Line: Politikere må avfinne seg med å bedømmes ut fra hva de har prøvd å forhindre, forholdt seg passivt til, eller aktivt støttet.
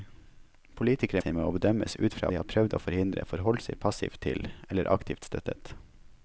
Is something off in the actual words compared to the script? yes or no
yes